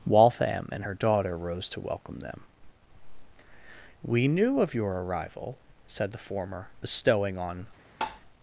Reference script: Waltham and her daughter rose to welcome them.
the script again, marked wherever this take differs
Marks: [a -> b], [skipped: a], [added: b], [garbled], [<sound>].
Waltham and her daughter rose to welcome them. [added: We knew of your arrival said the former bestowing on] [tap]